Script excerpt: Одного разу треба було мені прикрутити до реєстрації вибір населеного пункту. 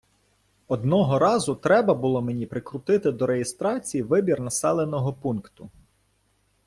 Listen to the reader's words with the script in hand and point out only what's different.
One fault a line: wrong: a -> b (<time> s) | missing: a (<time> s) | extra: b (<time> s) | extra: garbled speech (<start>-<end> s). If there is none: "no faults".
no faults